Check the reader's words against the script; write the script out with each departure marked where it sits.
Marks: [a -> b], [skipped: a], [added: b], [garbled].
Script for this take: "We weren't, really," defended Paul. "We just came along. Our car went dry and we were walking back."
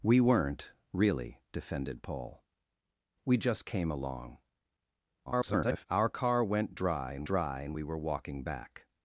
"We weren't, really," defended Paul. "We just came along. [garbled] Our car went dry and [added: dry and] we were walking back."